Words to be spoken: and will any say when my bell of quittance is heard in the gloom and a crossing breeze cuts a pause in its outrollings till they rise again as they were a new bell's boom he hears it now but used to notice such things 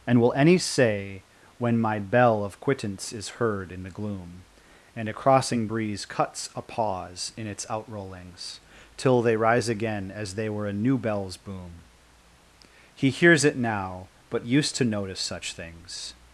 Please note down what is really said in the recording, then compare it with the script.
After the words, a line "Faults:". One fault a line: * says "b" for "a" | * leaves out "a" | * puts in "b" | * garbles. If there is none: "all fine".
and will any say when my bell of quittance is heard in the gloom and a crossing breeze cuts a pause in its outrollings till they rise again as they were a new bell's boom he hears it now but used to notice such things
Faults:
all fine